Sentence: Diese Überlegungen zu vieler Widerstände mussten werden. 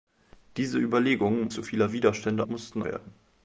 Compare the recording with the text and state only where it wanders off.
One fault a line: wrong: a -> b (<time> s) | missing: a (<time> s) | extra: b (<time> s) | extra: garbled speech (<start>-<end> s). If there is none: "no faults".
no faults